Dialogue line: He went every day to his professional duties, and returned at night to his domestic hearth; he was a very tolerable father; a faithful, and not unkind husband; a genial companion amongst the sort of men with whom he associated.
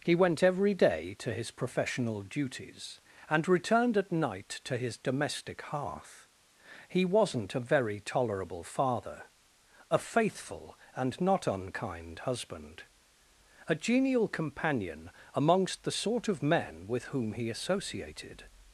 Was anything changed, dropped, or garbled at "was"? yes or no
yes